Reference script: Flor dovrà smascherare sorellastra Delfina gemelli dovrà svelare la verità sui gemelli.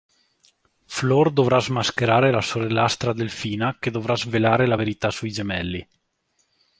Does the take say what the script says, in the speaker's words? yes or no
no